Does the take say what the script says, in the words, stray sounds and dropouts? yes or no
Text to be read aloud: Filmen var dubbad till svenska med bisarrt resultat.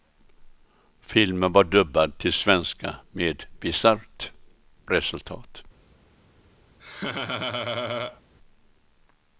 no